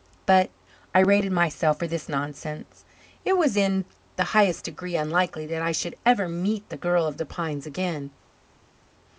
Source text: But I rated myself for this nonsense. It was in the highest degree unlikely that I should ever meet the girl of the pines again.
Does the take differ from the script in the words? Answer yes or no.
no